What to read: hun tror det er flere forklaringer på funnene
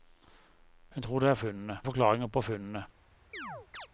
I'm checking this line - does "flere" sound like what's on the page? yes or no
no